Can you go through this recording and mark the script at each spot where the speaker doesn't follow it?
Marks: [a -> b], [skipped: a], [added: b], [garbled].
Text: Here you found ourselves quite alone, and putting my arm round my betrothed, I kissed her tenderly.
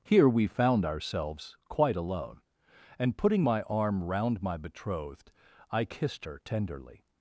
Here [you -> we] found ourselves quite alone, and putting my arm round my betrothed, I kissed her tenderly.